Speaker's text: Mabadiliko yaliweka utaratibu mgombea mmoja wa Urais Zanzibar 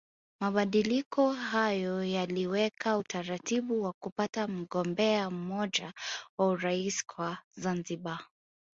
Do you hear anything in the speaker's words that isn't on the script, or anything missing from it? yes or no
yes